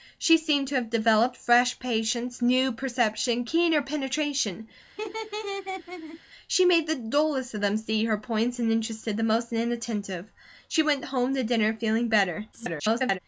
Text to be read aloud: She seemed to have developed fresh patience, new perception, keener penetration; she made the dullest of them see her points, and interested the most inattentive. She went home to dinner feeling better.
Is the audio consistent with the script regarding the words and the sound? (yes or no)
no